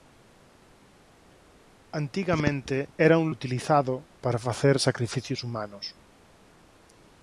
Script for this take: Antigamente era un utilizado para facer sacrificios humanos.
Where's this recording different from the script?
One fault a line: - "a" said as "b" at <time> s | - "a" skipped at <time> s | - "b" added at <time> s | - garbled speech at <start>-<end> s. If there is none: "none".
none